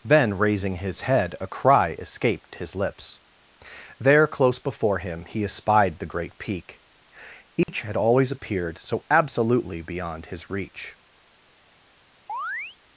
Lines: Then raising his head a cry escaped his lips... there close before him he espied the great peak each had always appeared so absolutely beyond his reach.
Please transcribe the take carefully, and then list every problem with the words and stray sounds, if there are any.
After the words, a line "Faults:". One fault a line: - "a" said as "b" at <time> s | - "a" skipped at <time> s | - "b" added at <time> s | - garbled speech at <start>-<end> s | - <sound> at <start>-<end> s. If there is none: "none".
Then raising his head a cry escaped his lips... there close before him he espied the great peak each had always appeared so absolutely beyond his reach.
Faults:
- dropout at 7.6-7.7 s
- chirp at 12.3-12.8 s